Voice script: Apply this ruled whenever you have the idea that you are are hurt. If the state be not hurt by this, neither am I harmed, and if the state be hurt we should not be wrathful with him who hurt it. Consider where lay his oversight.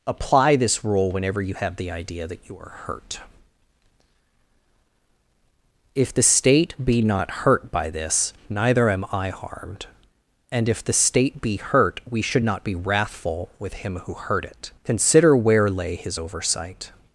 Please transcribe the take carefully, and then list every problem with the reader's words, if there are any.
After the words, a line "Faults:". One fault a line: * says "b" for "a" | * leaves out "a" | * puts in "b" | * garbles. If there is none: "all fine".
Apply this rule whenever you have the idea that you are hurt. If the state be not hurt by this, neither am I harmed, and if the state be hurt we should not be wrathful with him who hurt it. Consider where lay his oversight.
Faults:
* says "rule" for "ruled"
* leaves out "are"